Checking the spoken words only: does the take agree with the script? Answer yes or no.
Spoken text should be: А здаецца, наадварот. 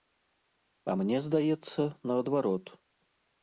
no